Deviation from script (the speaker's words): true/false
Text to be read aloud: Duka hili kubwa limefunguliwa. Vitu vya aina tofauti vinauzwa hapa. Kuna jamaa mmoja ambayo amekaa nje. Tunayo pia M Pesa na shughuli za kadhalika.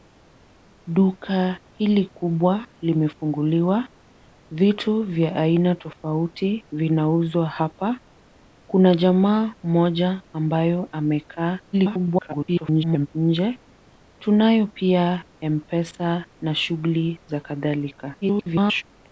true